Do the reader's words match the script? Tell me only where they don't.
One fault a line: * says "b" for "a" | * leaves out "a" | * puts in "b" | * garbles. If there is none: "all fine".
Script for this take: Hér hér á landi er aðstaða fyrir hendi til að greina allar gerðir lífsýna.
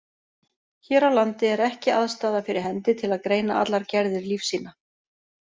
* leaves out "hér"
* puts in "ekki"